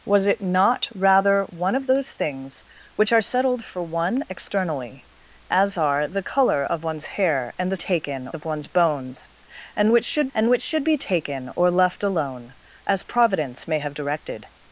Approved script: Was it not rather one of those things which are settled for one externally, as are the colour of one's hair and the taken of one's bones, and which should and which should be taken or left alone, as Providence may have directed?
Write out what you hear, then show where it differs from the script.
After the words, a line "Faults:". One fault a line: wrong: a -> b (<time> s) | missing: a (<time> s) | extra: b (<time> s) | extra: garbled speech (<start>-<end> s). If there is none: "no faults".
Was it not rather one of those things which are settled for one externally, as are the colour of one's hair and the taken of one's bones, and which should and which should be taken or left alone, as Providence may have directed?
Faults:
no faults